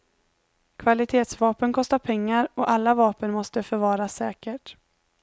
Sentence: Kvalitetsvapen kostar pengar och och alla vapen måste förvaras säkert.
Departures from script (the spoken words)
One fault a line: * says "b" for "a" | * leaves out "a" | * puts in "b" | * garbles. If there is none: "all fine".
* leaves out "och"